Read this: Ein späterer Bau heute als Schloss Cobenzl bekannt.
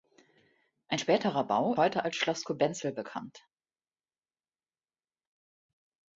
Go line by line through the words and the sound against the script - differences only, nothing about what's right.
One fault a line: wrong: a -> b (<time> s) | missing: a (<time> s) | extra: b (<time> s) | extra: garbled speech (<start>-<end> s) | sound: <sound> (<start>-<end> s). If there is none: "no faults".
no faults